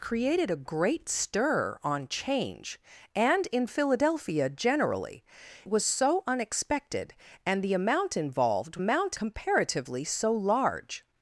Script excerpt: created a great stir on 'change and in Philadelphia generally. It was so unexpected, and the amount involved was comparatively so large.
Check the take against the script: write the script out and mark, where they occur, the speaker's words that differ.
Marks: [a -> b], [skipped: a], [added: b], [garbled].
created a great stir on 'change and in Philadelphia generally. [skipped: It] was so unexpected, and the amount involved [was -> amount] comparatively so large.